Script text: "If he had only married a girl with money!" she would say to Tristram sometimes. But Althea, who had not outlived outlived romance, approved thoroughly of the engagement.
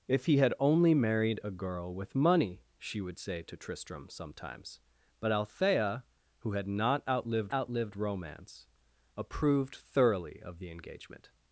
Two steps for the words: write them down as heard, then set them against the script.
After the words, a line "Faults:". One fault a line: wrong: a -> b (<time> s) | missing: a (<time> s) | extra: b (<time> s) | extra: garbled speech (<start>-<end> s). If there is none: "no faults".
"If he had only married a girl with money!" she would say to Tristram sometimes. But Althea, who had not outlived outlived romance, approved thoroughly of the engagement.
Faults:
no faults